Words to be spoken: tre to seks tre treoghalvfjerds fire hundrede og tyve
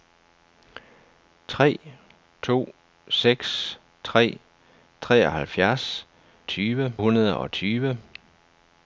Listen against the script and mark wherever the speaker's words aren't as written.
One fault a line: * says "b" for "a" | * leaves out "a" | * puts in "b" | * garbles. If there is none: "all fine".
* says "tyve" for "fire"